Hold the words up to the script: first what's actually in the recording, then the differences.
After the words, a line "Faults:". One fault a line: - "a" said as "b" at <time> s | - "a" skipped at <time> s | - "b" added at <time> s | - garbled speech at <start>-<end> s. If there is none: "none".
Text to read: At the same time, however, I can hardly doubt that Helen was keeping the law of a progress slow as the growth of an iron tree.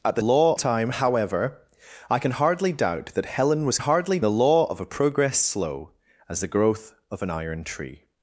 At the law time, however, I can hardly doubt that Helen was hardly the law of a progress slow as the growth of an iron tree.
Faults:
- "same" said as "law" at 0.2 s
- "keeping" said as "hardly" at 3.8 s